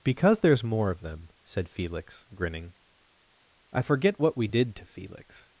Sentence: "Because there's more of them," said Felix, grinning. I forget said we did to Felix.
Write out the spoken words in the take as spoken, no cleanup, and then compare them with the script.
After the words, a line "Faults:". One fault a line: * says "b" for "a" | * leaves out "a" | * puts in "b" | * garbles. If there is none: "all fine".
"Because there's more of them," said Felix, grinning. I forget what we did to Felix.
Faults:
* says "what" for "said"